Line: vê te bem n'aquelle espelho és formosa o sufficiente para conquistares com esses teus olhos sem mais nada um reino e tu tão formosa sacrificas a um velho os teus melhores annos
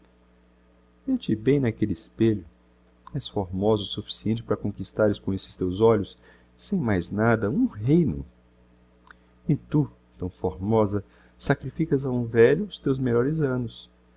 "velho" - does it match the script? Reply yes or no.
yes